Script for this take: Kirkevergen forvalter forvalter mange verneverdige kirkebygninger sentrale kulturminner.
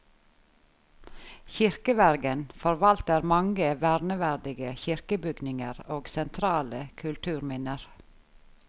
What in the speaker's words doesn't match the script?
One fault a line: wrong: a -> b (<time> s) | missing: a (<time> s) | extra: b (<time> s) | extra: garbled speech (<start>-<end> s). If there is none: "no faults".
missing: forvalter (3.2 s)
extra: og (5.9 s)